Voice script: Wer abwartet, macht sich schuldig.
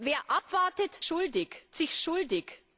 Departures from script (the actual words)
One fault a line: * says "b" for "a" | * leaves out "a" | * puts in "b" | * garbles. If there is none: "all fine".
* says "schuldig" for "macht"